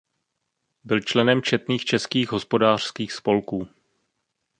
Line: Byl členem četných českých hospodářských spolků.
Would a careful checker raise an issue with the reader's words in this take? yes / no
no